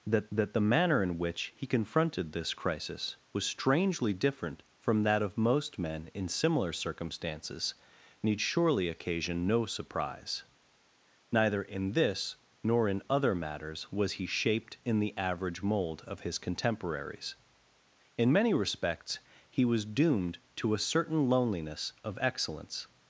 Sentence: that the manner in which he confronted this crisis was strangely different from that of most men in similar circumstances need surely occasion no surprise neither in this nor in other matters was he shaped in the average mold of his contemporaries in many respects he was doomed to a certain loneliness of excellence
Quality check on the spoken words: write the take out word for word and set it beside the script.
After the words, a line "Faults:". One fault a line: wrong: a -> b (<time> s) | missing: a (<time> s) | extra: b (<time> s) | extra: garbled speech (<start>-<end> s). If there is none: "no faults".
that that the manner in which he confronted this crisis was strangely different from that of most men in similar circumstances need surely occasion no surprise neither in this nor in other matters was he shaped in the average mold of his contemporaries in many respects he was doomed to a certain loneliness of excellence
Faults:
extra: that (0.3 s)